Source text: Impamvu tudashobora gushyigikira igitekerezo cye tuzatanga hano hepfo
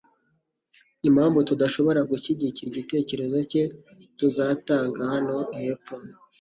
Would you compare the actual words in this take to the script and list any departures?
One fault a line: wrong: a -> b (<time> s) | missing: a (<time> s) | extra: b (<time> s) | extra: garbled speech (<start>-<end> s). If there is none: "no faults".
no faults